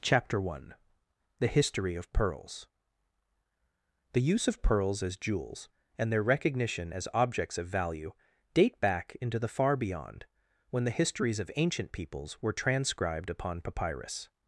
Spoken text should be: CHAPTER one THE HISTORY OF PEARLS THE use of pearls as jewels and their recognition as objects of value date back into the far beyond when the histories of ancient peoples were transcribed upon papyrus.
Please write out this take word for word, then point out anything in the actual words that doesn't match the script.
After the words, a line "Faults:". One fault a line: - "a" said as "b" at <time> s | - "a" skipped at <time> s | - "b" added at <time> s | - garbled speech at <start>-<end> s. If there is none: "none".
CHAPTER one THE HISTORY OF PEARLS THE use of pearls as jewels and their recognition as objects of value date back into the far beyond when the histories of ancient peoples were transcribed upon papyrus.
Faults:
none